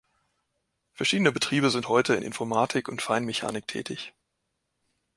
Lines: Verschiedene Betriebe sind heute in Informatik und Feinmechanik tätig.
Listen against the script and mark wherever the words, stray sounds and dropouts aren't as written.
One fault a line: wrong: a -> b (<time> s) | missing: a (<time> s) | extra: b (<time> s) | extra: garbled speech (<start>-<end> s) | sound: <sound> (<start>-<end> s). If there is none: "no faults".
no faults